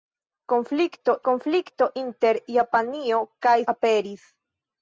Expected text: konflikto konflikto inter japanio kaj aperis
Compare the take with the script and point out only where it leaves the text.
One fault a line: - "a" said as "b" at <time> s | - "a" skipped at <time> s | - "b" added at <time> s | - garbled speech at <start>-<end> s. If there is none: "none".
none